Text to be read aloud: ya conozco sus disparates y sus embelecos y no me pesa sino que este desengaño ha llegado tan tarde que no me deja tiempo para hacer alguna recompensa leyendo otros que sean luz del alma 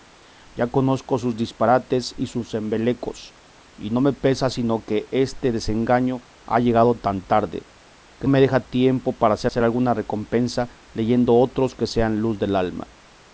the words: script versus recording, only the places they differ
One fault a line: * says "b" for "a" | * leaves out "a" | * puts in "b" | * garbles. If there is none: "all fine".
* leaves out "no"
* puts in "hacer"